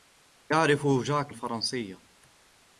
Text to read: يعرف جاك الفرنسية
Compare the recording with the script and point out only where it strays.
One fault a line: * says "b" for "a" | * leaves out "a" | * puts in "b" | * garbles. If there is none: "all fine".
all fine